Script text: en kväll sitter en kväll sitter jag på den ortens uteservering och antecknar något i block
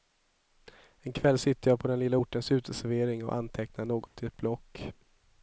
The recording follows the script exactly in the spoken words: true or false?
false